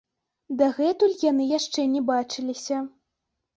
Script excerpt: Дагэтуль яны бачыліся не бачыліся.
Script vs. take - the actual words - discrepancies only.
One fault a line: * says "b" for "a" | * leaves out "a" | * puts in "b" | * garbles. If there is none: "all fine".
* says "яшчэ" for "бачыліся"